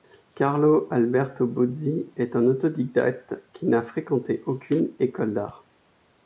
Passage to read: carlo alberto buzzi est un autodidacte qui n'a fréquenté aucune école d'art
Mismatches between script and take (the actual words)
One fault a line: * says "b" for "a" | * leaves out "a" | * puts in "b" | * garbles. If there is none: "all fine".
all fine